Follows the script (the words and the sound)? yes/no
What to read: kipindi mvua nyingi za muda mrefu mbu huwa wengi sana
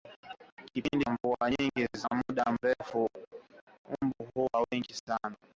yes